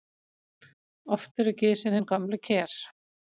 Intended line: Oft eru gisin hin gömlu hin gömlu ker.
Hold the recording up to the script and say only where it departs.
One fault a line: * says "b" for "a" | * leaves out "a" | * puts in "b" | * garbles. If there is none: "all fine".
* leaves out "hin gömlu"